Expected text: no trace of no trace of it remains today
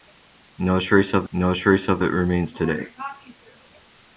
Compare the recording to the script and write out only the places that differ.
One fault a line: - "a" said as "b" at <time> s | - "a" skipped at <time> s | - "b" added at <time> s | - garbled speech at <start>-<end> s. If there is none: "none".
none